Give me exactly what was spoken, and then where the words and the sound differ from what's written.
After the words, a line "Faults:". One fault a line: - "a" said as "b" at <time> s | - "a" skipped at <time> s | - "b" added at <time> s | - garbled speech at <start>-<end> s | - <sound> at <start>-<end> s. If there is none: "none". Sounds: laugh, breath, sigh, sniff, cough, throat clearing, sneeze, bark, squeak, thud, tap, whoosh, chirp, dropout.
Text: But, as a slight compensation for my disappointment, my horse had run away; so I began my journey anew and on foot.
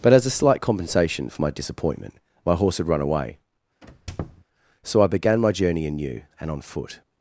But, as a slight compensation for my disappointment, my horse had run away; so I began my journey anew and on foot.
Faults:
- squeak at 3.8-4.4 s